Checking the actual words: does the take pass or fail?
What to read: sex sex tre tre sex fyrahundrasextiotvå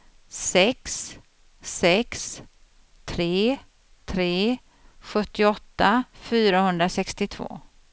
fail